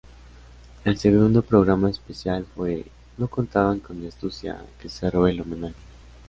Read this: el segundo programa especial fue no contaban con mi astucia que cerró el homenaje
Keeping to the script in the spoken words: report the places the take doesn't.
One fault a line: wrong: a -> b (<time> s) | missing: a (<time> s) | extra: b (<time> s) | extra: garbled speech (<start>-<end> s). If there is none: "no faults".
no faults